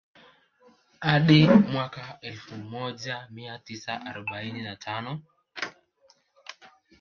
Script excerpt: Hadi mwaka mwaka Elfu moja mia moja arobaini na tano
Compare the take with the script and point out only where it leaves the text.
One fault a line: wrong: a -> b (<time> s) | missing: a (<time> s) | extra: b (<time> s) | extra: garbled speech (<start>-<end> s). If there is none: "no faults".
missing: mwaka (2.2 s)
wrong: moja -> tisa (3.6 s)